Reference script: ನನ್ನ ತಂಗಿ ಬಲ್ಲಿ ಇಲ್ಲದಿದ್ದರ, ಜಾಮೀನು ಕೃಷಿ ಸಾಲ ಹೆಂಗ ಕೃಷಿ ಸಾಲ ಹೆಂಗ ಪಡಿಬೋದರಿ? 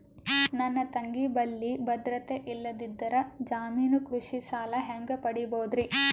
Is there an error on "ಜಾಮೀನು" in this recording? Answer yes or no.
no